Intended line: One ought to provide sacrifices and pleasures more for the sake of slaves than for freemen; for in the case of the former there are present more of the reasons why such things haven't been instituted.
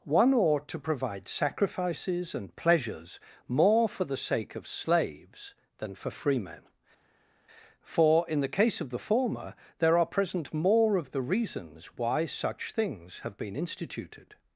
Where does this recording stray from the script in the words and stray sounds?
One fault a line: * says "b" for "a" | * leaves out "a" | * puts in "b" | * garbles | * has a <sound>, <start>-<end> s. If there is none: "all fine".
* says "have" for "haven't"